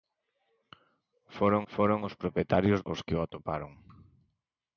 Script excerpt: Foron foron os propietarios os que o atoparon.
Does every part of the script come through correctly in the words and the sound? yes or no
yes